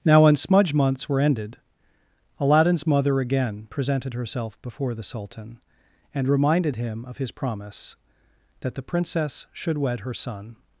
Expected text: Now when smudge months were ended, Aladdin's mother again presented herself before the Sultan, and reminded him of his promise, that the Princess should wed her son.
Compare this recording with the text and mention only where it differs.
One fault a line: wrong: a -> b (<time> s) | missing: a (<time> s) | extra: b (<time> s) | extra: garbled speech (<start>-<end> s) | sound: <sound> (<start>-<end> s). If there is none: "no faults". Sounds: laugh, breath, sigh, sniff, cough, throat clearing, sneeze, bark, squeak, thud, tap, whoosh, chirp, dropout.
no faults